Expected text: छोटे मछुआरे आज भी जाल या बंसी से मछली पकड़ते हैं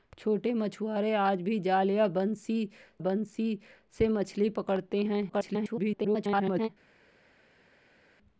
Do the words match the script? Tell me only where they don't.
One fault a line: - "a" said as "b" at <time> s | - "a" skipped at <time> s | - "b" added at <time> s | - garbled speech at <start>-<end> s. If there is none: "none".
- "बंसी" added at 3.0 s
- garbled speech at 5.3-6.7 s